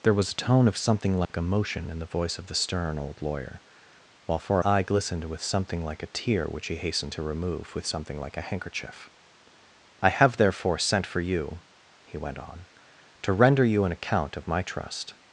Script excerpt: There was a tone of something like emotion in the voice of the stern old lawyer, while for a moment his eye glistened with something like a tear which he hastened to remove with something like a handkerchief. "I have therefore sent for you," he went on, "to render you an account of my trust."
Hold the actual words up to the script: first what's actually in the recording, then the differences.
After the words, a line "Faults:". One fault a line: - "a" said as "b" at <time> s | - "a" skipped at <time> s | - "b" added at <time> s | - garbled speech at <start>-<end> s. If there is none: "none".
There was a tone of something like emotion in the voice of the stern old lawyer, while for eye glistened with something like a tear which he hastened to remove with something like a handkerchief. "I have therefore sent for you," he went on, "to render you an account of my trust."
Faults:
- "a moment his" skipped at 4.6 s